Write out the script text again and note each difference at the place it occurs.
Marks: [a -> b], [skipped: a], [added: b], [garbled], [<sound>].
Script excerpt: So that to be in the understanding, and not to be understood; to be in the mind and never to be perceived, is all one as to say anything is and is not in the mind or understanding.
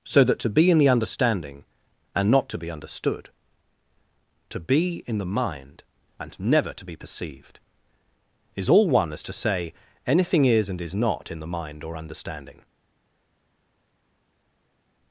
So that to be in the understanding, and not to be understood; to be in the mind and never to be perceived, is all one as to say anything is and is not in the mind or understanding.